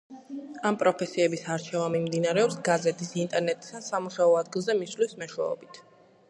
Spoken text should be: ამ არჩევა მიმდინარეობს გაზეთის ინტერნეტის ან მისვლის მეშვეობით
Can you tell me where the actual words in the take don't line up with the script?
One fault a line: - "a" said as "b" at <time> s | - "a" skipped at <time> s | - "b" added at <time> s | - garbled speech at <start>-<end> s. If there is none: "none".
- "პროფესიების" added at 0.8 s
- "სამუშაო ადგილზე" added at 3.9 s